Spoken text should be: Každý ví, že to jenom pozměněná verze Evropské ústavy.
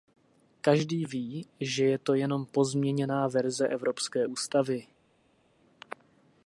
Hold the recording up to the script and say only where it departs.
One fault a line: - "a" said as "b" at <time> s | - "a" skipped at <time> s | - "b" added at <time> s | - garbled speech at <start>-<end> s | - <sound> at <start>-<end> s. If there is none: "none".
- "je" added at 1.9 s